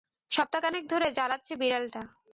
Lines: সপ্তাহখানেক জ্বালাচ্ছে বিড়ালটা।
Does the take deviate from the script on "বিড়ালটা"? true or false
false